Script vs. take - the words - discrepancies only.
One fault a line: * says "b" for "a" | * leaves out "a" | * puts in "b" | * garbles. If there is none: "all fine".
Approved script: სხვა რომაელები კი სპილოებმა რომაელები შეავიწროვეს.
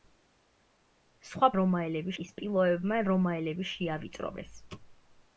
all fine